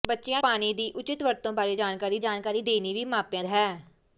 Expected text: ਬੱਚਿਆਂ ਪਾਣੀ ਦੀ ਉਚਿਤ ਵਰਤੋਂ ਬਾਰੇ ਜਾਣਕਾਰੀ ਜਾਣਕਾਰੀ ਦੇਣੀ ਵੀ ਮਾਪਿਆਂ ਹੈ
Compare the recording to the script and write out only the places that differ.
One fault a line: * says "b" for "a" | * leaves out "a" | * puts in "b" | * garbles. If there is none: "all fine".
all fine